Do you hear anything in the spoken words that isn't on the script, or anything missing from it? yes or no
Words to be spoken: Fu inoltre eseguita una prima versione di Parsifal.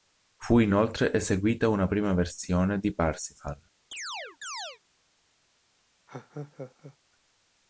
no